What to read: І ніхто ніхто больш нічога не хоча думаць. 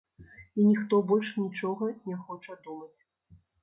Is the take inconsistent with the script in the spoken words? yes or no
yes